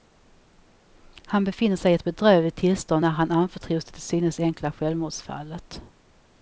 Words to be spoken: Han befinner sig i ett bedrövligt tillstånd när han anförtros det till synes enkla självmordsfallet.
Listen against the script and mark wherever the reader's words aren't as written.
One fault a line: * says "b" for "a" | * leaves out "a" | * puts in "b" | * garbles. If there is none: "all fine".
all fine